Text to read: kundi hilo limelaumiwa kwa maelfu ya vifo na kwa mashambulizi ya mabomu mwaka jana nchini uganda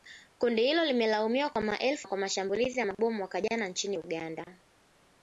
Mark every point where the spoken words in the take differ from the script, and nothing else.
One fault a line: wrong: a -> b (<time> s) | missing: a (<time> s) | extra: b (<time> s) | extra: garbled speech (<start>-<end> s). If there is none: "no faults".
missing: ya vifo na (2.1 s)